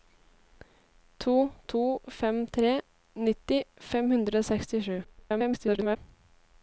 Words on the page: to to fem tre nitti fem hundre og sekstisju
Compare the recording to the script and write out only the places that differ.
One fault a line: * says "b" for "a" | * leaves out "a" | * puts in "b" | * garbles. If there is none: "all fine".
* garbles